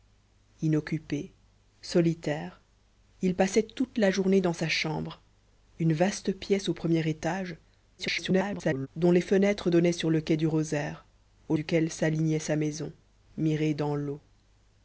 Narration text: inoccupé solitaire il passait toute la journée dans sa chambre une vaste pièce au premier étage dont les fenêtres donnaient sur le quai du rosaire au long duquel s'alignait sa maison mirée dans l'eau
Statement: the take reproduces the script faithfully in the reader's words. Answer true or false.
false